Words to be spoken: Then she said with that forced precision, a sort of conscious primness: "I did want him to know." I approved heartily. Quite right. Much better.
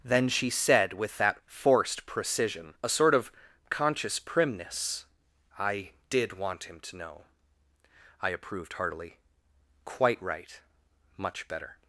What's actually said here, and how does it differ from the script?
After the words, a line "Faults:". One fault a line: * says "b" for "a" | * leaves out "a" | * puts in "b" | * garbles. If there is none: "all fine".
Then she said with that forced precision, a sort of conscious primness: "I did want him to know." I approved heartily. Quite right. Much better.
Faults:
all fine